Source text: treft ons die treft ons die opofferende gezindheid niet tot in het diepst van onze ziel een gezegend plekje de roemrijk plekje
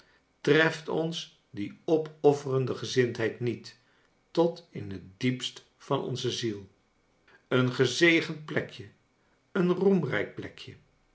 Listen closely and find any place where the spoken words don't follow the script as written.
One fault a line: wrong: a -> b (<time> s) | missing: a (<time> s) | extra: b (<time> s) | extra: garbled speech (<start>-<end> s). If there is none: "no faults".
missing: treft ons die (1.8 s)
wrong: de -> een (9.5 s)